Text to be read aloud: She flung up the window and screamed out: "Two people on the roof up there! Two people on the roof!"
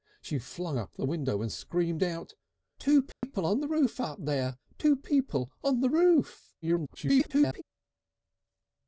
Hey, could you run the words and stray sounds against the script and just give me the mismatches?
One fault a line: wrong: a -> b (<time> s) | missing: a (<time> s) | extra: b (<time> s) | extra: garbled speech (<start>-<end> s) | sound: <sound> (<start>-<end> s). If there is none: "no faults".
sound: dropout (3.1-3.2 s)
extra: garbled speech (6.6-7.6 s)